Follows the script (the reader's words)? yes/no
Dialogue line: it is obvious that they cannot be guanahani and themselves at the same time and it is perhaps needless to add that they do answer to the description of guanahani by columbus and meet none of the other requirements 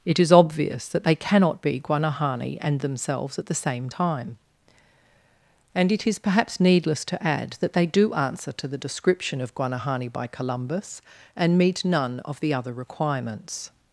yes